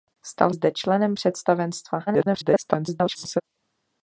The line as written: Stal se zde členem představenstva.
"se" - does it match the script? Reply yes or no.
no